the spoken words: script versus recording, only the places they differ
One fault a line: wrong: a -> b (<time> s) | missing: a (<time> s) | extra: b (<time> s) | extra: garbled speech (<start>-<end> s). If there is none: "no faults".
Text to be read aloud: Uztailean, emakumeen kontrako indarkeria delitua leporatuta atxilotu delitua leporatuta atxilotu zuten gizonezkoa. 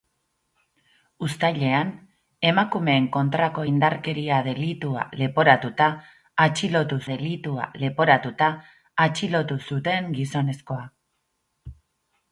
no faults